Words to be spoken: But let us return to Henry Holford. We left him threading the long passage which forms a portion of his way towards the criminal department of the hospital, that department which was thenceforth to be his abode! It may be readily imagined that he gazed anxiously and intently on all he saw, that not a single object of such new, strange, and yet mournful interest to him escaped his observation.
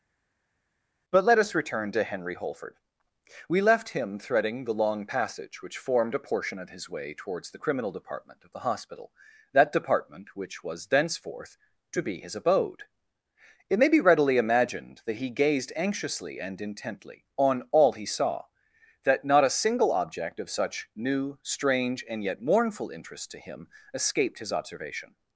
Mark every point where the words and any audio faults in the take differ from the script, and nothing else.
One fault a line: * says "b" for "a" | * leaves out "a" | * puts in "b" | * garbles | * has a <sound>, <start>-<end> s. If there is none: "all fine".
* says "formed" for "forms"